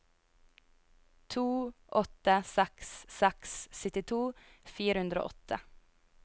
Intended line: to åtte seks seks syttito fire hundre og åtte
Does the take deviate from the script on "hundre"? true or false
false